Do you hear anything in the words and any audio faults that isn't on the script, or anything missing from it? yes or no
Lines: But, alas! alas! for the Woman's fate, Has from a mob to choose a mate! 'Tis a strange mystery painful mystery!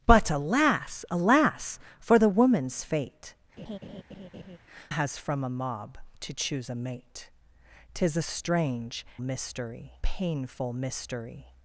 yes